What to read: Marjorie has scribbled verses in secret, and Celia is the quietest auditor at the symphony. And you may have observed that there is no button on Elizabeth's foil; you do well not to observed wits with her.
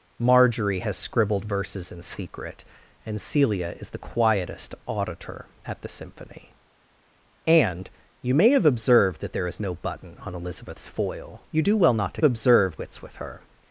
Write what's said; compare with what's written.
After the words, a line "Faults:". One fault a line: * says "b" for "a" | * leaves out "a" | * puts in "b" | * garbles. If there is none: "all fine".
Marjorie has scribbled verses in secret, and Celia is the quietest auditor at the symphony. And you may have observed that there is no button on Elizabeth's foil; you do well not to observed wits with her.
Faults:
all fine